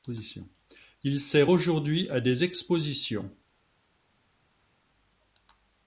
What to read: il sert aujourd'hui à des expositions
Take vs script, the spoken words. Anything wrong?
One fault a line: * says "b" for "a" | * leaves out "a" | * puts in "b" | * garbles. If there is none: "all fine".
all fine